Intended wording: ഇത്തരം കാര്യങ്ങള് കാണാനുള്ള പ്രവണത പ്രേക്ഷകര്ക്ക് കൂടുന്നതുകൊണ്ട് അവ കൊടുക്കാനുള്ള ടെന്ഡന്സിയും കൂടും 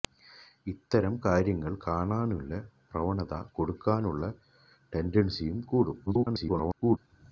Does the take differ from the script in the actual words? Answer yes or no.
yes